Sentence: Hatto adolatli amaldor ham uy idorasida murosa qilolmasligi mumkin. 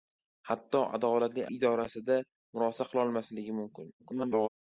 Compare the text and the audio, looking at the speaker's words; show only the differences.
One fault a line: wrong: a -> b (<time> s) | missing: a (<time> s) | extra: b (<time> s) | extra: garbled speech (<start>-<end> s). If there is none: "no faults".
missing: amaldor ham uy (1.4 s)
extra: garbled speech (4.0-4.5 s)